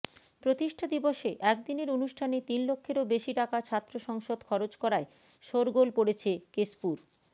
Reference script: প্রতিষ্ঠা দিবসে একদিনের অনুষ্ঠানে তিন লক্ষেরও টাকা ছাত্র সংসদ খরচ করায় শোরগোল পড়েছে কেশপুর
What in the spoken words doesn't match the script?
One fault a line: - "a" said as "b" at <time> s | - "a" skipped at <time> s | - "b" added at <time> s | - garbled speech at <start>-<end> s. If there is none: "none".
- "বেশি" added at 3.1 s